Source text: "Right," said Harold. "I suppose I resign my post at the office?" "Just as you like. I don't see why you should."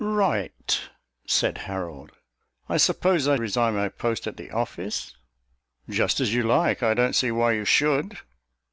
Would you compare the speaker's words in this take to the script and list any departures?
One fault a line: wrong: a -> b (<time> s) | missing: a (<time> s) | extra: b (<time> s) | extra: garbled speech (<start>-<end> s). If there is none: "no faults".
no faults